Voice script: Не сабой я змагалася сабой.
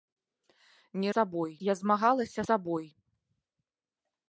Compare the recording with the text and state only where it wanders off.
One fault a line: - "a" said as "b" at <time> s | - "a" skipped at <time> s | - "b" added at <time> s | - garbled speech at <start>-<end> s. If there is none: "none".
none